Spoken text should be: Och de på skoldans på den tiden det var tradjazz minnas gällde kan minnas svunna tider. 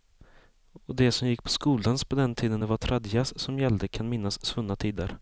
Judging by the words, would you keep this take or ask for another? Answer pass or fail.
fail